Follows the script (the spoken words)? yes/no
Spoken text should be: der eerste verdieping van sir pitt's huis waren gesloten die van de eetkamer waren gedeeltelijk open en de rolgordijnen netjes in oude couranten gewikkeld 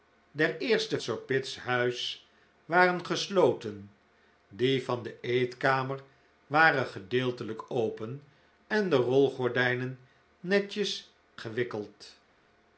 no